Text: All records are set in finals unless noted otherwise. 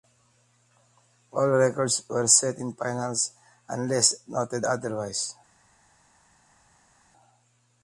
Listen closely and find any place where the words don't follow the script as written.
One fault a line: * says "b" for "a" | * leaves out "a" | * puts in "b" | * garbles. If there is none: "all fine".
* says "were" for "are"